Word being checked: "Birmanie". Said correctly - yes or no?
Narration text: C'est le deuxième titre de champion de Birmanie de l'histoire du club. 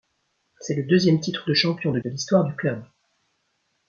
no